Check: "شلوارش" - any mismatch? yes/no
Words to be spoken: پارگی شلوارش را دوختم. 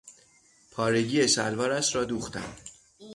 no